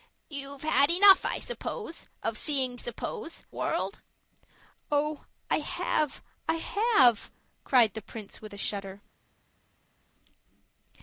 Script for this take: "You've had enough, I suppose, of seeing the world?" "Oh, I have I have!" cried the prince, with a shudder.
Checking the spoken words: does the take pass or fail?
fail